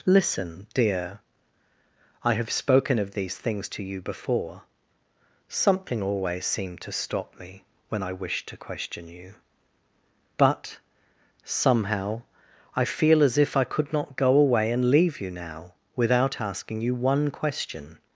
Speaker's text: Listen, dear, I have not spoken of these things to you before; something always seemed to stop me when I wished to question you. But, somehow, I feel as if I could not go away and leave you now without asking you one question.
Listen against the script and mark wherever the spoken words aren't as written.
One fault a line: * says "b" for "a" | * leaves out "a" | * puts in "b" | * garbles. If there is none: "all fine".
* leaves out "not"